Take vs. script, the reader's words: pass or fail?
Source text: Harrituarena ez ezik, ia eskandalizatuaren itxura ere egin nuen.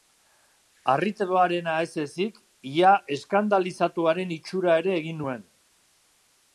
pass